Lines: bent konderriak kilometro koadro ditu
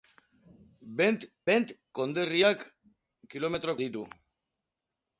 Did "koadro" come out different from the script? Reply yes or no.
yes